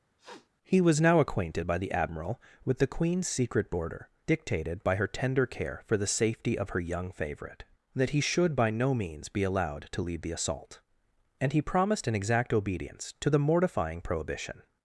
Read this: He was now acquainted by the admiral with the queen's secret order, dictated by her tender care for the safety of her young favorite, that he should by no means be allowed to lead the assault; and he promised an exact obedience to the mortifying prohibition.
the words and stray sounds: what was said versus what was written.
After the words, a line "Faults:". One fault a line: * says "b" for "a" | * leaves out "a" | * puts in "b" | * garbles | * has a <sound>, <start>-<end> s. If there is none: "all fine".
He was now acquainted by the admiral with the queen's secret border, dictated by her tender care for the safety of her young favorite, that he should by no means be allowed to lead the assault; and he promised an exact obedience to the mortifying prohibition.
Faults:
* has a sniff, 0.2-0.5 s
* says "border" for "order"